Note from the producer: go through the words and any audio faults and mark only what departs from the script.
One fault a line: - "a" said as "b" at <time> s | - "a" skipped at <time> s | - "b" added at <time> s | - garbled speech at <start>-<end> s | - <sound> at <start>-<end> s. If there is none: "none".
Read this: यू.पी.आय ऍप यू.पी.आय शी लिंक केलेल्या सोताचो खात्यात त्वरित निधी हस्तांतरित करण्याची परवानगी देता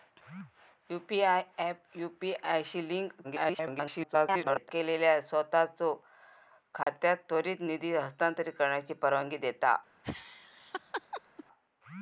- garbled speech at 3.2-4.7 s
- dropout at 6.8-6.9 s
- laugh at 10.0-11.4 s